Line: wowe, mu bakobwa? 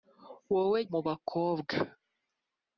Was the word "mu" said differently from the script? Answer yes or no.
no